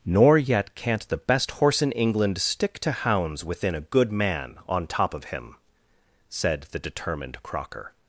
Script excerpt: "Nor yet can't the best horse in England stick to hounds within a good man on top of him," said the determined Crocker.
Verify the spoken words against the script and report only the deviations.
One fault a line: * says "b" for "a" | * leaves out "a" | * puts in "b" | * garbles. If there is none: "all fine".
all fine